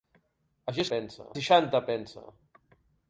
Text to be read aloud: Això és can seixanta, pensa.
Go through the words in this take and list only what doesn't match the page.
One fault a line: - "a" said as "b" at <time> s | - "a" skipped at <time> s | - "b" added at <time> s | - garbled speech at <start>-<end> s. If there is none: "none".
- "can" said as "pensa" at 0.9 s